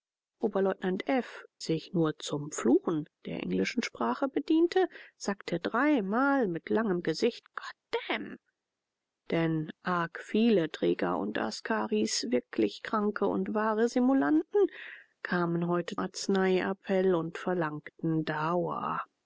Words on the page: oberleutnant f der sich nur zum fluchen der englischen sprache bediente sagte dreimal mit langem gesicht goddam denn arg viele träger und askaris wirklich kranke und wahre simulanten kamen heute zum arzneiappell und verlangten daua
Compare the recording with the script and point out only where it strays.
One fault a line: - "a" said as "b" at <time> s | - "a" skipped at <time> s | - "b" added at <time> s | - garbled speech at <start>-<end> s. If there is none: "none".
- "der" skipped at 1.4 s
- "zum" skipped at 16.0 s